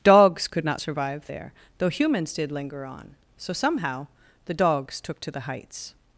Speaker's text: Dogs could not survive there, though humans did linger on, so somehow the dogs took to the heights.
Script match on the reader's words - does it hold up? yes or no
yes